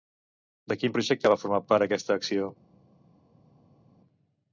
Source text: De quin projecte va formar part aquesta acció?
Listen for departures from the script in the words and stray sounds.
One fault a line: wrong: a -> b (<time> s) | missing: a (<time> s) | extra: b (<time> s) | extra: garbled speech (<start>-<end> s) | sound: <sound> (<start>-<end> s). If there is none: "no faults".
no faults